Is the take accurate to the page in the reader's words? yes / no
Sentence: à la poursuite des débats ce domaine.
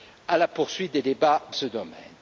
yes